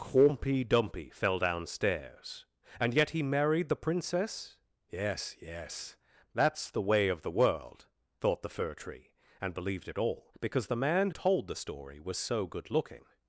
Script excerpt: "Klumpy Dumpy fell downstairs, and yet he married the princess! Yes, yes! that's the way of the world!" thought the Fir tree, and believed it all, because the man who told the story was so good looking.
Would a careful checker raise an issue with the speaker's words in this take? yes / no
yes